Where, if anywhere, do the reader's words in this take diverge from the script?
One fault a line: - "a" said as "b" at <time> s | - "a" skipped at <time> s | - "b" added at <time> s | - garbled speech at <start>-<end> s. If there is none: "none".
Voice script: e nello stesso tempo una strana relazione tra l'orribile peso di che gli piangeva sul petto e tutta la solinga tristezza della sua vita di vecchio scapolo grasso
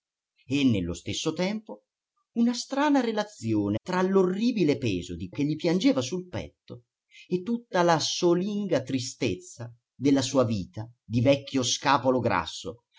none